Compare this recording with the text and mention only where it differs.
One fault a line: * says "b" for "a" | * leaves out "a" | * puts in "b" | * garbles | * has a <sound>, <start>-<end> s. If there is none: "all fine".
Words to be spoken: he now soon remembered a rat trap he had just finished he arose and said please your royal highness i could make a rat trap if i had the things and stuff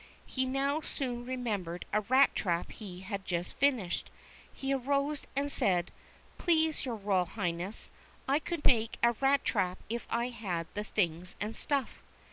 all fine